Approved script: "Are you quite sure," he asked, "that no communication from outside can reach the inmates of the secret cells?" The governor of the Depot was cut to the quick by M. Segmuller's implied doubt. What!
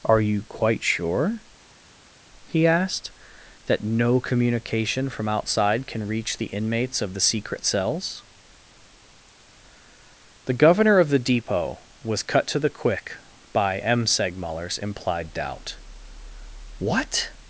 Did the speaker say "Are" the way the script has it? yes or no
yes